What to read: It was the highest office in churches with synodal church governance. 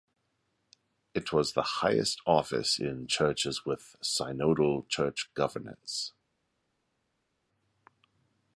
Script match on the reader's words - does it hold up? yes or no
yes